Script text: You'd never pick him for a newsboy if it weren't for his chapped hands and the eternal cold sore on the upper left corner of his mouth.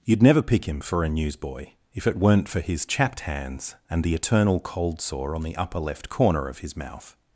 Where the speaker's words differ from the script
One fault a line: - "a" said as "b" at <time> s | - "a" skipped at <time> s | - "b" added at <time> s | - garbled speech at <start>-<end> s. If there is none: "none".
none